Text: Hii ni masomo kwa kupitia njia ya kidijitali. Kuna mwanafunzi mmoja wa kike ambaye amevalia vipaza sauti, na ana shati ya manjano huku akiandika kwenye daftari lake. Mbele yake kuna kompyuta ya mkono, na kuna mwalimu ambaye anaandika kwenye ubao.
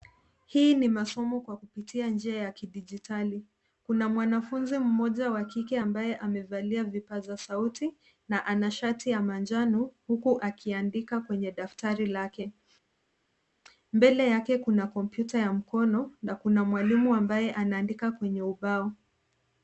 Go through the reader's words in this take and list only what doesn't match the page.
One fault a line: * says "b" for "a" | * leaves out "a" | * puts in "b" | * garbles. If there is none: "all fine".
all fine